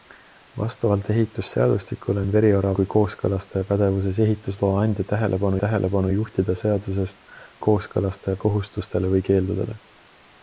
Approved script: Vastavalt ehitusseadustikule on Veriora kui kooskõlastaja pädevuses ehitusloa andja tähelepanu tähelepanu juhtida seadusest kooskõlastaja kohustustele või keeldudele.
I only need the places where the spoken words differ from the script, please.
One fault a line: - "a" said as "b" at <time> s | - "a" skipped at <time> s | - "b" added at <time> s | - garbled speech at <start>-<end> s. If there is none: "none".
none